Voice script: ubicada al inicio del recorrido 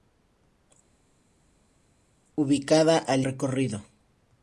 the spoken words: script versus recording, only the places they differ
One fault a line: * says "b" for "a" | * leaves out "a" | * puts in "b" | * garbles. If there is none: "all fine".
* leaves out "inicio del"